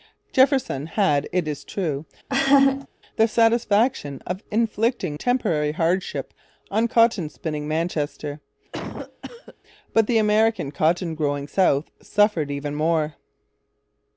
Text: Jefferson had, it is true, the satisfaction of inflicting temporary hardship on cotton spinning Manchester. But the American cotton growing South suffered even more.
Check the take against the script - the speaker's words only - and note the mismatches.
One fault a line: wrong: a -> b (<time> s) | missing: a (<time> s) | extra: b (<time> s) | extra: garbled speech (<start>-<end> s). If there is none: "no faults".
no faults